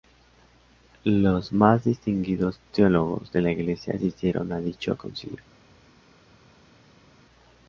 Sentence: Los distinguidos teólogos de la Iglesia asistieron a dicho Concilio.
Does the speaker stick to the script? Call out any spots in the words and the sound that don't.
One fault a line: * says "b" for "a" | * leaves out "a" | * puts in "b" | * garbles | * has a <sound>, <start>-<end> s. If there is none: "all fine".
* puts in "más"